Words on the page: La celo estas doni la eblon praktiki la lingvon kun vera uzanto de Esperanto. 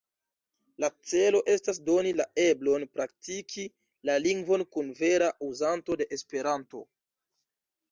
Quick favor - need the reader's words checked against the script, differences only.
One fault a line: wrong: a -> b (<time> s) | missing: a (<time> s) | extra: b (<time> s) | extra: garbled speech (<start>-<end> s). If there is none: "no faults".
no faults